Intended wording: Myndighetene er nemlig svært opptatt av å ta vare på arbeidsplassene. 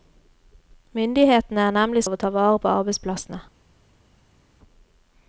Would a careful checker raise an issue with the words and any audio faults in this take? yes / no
yes